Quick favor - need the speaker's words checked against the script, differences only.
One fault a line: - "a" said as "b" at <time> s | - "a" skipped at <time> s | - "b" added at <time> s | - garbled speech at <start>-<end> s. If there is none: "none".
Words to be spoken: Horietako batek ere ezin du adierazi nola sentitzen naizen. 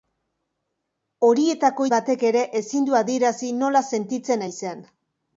none